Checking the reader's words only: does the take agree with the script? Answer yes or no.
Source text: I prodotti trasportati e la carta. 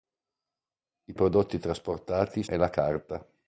yes